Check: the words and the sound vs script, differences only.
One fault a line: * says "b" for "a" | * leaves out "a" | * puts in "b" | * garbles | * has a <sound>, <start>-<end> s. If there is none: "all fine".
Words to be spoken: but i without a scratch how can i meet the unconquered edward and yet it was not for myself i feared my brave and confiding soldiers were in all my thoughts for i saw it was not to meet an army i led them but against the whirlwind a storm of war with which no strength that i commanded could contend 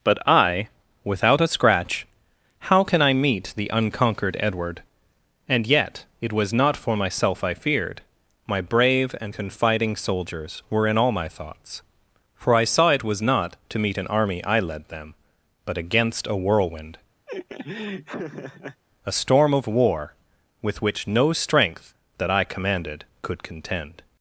* says "a" for "the"
* has a laugh, 17.3-18.8 s